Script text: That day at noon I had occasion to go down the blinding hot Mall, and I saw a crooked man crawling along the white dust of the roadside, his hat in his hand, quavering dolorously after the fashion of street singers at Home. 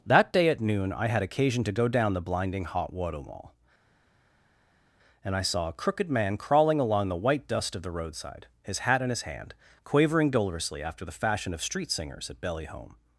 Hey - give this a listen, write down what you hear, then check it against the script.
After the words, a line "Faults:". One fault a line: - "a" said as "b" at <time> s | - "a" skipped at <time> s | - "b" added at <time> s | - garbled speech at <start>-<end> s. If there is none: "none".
That day at noon I had occasion to go down the blinding hot water Mall, and I saw a crooked man crawling along the white dust of the roadside, his hat in his hand, quavering dolorously after the fashion of street singers at belly Home.
Faults:
- "water" added at 2.9 s
- "belly" added at 12.4 s